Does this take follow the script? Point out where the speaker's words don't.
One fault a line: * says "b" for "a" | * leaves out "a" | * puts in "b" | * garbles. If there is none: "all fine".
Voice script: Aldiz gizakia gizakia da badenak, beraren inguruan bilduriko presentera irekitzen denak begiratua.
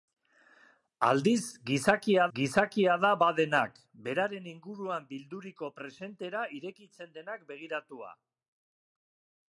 all fine